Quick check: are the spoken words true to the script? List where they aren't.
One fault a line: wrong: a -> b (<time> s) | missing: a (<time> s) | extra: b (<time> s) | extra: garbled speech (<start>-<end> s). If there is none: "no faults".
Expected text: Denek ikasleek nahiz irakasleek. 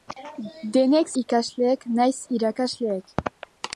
no faults